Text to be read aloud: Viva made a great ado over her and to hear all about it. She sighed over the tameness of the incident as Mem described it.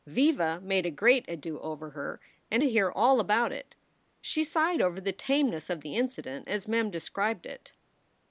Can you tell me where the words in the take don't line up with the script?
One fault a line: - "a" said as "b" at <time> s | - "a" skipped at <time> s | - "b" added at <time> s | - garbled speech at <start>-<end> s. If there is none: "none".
none